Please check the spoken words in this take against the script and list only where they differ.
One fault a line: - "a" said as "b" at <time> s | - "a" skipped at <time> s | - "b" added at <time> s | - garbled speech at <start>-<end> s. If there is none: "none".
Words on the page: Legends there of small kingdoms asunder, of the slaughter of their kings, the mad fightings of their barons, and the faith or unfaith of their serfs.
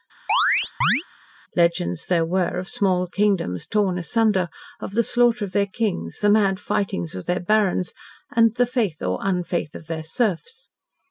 - "were" added at 2.2 s
- "torn" added at 3.7 s